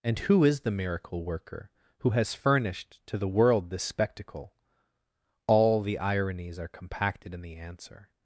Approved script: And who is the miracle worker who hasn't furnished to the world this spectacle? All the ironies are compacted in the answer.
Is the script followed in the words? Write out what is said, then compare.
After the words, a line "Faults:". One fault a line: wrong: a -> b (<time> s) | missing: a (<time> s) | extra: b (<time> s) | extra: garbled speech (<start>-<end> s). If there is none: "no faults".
And who is the miracle worker who has furnished to the world this spectacle? All the ironies are compacted in the answer.
Faults:
wrong: hasn't -> has (2.1 s)